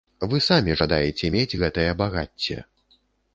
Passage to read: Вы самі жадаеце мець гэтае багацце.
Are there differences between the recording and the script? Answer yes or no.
no